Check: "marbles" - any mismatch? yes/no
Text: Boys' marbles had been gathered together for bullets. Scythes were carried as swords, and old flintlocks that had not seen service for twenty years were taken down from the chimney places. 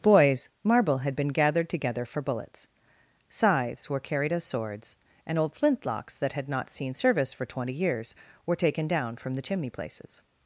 yes